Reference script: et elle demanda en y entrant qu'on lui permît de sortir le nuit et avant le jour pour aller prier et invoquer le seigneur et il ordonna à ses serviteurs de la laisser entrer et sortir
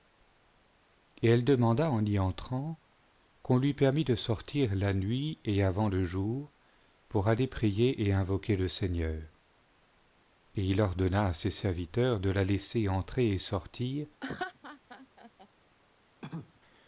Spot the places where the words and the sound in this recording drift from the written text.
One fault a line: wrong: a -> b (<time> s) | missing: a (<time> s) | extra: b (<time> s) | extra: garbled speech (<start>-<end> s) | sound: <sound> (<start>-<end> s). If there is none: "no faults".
wrong: le -> la (4.8 s)
sound: laugh (14.2-15.5 s)
sound: cough (16.2-16.6 s)